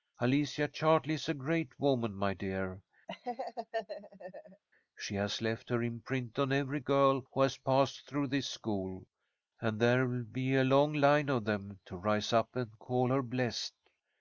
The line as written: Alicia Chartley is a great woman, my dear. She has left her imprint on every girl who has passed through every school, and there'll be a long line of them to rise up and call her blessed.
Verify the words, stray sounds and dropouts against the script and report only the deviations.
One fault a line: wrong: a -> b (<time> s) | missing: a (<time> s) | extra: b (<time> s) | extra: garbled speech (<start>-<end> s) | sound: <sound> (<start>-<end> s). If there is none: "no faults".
sound: laugh (3.1-4.6 s)
wrong: every -> this (8.3 s)